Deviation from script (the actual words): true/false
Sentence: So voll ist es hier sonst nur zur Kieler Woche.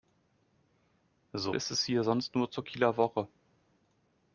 true